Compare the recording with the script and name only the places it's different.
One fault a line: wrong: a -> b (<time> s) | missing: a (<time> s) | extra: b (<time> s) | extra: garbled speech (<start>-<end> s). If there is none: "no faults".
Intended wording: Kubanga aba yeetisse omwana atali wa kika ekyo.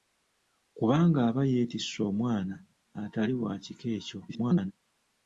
extra: garbled speech (4.3-4.7 s)